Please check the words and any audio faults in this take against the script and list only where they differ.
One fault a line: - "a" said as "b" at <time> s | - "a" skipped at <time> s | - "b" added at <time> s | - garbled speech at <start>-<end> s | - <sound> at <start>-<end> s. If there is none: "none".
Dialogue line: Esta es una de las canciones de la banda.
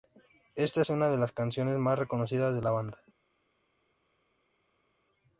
- "más reconocidas" added at 1.8 s